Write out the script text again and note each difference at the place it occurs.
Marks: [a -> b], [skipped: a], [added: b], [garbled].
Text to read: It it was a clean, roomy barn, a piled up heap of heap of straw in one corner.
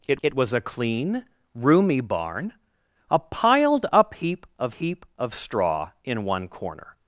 It it was a clean, roomy barn, a piled up heap of heap of straw in one corner.